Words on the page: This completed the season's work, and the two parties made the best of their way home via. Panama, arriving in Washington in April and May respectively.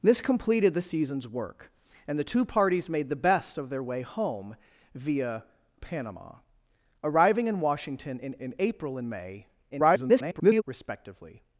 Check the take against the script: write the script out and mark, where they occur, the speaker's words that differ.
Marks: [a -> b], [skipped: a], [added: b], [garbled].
This completed the season's work, and the two parties made the best of their way home via. Panama, arriving in Washington in [added: in] April and May [garbled] respectively.